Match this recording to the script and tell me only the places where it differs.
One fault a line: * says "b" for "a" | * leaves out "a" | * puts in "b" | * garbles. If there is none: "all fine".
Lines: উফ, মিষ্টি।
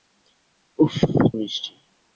all fine